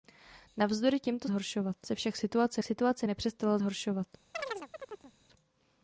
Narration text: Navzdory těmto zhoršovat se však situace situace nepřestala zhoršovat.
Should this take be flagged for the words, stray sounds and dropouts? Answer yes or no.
yes